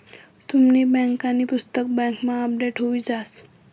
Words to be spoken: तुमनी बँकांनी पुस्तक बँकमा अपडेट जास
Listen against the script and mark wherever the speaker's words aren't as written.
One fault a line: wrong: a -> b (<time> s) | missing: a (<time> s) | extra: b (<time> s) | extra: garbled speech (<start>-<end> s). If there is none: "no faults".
extra: हुई (2.8 s)